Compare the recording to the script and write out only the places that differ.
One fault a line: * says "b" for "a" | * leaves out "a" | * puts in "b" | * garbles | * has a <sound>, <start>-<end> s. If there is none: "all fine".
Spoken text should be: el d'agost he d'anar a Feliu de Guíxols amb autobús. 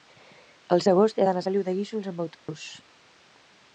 * has a dropout, 2.3-2.5 s